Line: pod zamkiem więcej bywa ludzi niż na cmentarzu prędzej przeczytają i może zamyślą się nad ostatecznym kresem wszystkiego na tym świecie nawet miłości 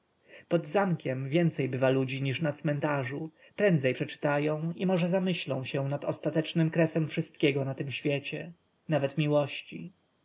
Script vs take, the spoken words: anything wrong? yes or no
no